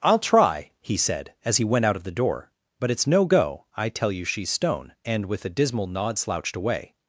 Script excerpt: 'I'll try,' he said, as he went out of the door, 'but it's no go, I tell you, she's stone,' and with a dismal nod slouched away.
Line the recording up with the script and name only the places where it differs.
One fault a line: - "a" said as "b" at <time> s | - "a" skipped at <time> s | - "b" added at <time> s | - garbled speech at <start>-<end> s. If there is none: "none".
none